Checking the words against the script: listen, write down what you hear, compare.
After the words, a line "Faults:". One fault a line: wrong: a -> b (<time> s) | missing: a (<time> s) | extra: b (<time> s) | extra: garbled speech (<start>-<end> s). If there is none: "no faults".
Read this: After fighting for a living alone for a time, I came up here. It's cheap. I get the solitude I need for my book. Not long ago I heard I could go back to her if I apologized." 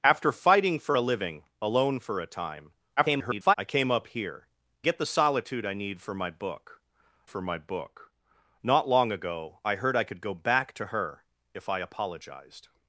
After fighting for a living alone for a time, [garbled] I came up here. Get the solitude I need for my book for my book. Not long ago I heard I could go back to her if I apologized."
Faults:
extra: garbled speech (3.0-3.5 s)
missing: It's cheap I (4.5 s)
extra: for my book (7.3 s)